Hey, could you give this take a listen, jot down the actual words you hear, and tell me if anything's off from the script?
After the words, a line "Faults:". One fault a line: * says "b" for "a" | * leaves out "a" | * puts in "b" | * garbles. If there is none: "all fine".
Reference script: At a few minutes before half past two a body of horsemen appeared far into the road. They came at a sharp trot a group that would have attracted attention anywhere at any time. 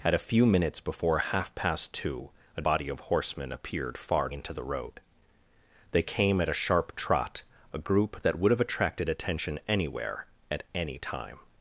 At a few minutes before half past two a body of horsemen appeared far into the road. They came at a sharp trot a group that would have attracted attention anywhere at any time.
Faults:
all fine